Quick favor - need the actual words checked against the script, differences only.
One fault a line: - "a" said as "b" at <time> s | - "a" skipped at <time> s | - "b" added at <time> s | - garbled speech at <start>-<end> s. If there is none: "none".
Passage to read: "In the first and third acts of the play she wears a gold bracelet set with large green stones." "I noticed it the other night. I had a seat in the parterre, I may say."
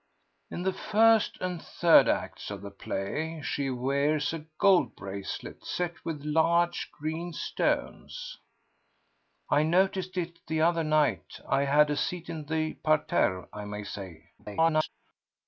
- garbled speech at 14.4-14.9 s